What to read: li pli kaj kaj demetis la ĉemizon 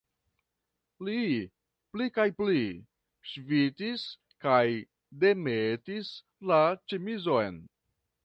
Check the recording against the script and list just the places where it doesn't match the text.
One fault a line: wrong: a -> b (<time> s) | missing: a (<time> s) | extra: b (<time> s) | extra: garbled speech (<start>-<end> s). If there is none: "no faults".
extra: pli ŝvitis (2.4 s)